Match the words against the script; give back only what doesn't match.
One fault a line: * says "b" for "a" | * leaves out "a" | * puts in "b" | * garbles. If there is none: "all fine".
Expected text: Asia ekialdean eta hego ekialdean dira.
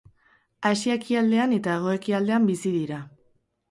* puts in "bizi"